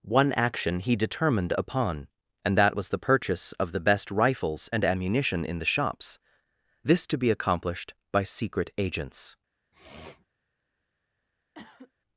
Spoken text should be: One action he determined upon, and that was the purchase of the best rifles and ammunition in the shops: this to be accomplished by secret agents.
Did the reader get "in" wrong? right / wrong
right